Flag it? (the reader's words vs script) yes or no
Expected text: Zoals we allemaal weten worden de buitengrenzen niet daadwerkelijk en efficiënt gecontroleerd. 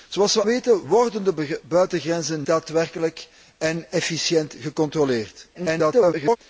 yes